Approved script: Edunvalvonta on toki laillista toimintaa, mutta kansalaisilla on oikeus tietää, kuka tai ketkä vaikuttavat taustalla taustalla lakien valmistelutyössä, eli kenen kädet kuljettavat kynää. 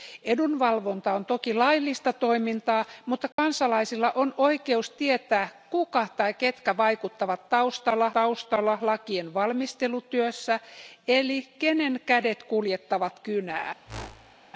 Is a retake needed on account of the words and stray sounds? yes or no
yes